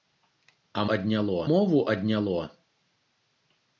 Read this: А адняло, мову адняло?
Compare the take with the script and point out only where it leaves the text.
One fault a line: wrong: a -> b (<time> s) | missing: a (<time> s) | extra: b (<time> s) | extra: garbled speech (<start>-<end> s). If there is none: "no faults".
no faults